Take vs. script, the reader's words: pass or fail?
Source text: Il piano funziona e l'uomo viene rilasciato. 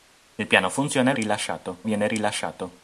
fail